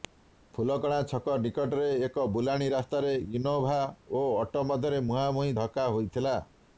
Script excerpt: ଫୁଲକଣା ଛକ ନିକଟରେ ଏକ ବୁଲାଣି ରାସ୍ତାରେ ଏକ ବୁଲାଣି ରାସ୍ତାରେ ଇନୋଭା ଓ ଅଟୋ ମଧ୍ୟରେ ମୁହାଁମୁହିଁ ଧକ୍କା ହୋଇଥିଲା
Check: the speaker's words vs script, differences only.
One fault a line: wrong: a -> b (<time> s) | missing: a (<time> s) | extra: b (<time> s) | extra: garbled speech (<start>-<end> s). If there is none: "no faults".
missing: ଏକ ବୁଲାଣି ରାସ୍ତାରେ (3.1 s)